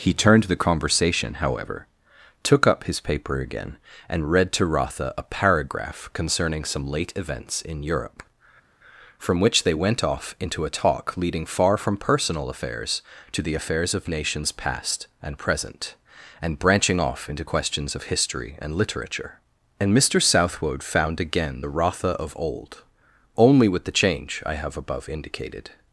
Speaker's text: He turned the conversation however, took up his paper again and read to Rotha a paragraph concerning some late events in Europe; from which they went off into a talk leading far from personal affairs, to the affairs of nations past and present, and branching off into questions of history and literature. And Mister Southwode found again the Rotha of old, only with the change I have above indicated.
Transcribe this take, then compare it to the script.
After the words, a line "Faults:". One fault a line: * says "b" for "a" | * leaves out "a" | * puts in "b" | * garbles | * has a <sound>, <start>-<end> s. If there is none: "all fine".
He turned the conversation however, took up his paper again and read to Rotha a paragraph concerning some late events in Europe; from which they went off into a talk leading far from personal affairs, to the affairs of nations past and present, and branching off into questions of history and literature. And Mister Southwode found again the Rotha of old, only with the change I have above indicated.
Faults:
all fine